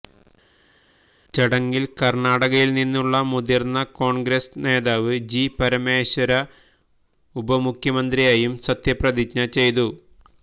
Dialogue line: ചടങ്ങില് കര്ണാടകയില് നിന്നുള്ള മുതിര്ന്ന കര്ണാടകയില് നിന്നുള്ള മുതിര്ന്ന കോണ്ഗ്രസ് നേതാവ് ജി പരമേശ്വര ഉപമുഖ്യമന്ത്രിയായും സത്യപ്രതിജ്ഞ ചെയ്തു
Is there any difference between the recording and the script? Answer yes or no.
yes